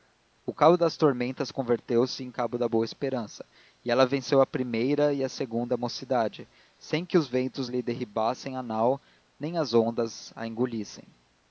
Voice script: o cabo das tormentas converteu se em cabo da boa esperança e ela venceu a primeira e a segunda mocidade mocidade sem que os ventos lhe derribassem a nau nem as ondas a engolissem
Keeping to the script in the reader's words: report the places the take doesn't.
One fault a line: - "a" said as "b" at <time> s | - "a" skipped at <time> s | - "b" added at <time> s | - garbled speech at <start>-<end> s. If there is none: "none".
- "mocidade" skipped at 6.5 s